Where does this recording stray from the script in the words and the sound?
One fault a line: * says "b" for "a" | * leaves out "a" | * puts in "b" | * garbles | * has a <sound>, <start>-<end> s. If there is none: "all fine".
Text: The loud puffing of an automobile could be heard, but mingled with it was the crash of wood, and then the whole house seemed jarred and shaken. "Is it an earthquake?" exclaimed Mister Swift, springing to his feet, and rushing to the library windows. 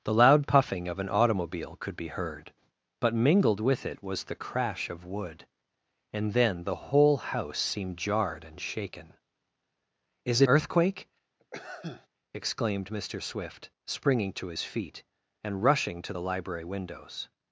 * leaves out "an"
* has a sneeze, 11.4-12.1 s